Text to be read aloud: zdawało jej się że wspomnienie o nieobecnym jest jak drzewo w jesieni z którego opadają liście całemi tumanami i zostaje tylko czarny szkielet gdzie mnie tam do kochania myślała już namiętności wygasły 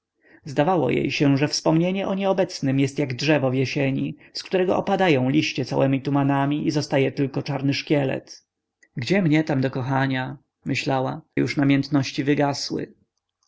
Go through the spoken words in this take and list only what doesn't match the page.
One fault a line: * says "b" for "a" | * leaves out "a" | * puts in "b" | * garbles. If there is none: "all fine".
all fine